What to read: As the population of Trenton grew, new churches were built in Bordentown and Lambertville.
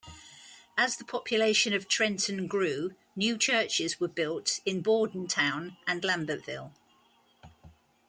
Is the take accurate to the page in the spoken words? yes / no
yes